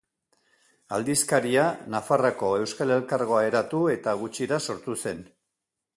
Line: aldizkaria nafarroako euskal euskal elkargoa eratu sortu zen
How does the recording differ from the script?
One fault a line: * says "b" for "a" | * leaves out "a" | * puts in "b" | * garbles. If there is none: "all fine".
* leaves out "euskal"
* puts in "eta gutxira"